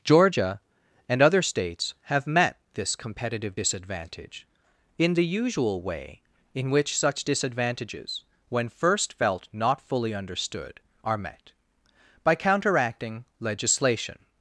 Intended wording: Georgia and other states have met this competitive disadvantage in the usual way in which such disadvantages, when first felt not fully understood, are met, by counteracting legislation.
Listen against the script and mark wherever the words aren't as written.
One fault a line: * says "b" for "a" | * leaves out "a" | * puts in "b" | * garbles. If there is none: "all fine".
all fine